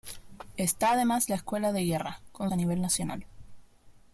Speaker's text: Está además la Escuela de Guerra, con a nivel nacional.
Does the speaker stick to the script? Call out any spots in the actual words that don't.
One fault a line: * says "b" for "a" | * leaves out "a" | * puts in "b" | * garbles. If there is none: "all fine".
all fine